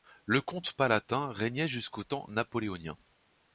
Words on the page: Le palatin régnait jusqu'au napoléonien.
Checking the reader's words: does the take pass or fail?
fail